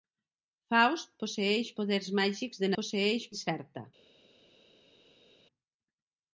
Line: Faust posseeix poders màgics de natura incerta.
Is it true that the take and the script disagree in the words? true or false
true